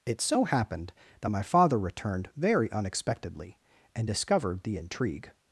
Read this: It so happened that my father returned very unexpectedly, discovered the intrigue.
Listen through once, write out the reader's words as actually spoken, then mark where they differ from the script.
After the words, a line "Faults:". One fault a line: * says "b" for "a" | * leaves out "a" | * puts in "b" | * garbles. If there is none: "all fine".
It so happened that my father returned very unexpectedly, and discovered the intrigue.
Faults:
* puts in "and"